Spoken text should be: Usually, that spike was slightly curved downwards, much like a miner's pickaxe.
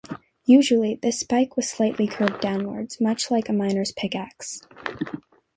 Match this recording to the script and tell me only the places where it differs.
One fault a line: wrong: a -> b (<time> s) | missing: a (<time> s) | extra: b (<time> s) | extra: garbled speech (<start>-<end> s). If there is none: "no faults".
wrong: that -> this (1.0 s)